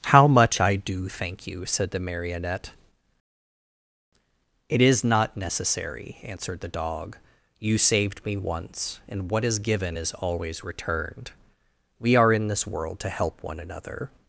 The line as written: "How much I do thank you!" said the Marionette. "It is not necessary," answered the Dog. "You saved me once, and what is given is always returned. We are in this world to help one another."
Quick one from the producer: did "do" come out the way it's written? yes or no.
yes